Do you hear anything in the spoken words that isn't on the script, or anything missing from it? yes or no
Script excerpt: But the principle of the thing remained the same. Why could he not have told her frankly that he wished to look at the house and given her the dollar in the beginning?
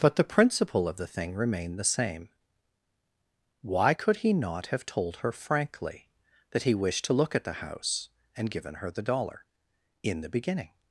no